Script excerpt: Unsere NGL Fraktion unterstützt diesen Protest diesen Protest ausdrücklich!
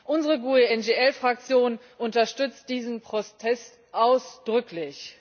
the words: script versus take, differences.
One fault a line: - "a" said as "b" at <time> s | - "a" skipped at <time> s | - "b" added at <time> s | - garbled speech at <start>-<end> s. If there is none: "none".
- "GUE" added at 0.4 s
- "diesen Protest" skipped at 3.8 s